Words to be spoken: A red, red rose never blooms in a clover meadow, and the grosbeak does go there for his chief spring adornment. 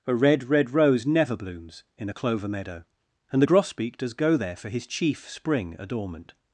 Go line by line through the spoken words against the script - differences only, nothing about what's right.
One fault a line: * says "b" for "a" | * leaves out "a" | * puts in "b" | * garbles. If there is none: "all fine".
all fine